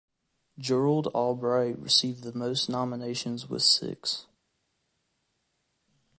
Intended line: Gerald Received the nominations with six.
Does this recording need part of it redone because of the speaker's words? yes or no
yes